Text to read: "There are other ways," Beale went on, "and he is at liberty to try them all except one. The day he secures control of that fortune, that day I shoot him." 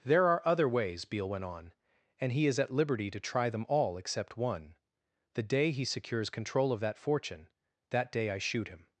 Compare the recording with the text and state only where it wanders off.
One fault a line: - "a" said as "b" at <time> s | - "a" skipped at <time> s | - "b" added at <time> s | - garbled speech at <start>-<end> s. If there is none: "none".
none